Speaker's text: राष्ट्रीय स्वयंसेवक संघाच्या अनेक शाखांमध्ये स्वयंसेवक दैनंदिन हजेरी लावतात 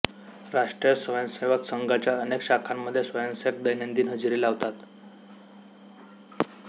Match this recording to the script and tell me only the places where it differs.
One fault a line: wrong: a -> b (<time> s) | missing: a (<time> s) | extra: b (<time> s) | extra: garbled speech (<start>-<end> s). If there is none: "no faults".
no faults